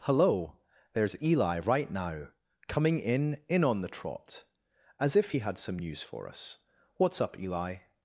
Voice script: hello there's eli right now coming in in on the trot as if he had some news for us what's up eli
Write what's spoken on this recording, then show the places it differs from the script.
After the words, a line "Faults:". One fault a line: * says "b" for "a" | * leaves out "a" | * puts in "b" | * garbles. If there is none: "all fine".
hello there's eli right now coming in in on the trot as if he had some news for us what's up eli
Faults:
all fine